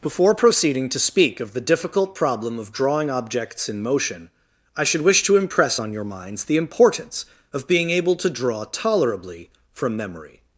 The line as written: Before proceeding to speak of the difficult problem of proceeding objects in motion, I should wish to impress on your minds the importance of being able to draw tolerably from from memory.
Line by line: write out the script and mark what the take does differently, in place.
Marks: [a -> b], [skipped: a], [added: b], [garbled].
Before proceeding to speak of the difficult problem of [proceeding -> drawing] objects in motion, I should wish to impress on your minds the importance of being able to draw tolerably from [skipped: from] memory.